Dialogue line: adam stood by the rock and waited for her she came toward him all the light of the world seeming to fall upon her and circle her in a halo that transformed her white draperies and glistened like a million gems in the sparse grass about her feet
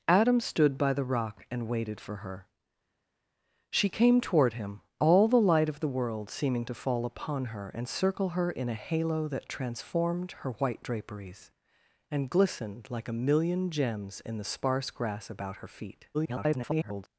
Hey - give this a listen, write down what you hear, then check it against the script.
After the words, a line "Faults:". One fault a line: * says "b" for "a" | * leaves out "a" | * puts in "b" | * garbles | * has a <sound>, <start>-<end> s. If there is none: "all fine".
adam stood by the rock and waited for her she came toward him all the light of the world seeming to fall upon her and circle her in a halo that transformed her white draperies and glistened like a million gems in the sparse grass about her feet [garbled]
Faults:
* garbles